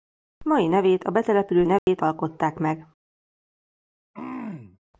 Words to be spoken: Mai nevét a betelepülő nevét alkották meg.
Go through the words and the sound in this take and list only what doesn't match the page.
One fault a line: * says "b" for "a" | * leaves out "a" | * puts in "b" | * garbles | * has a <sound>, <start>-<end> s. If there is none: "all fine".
* has a dropout, 1.8-1.9 s
* has a throat clearing, 4.1-4.8 s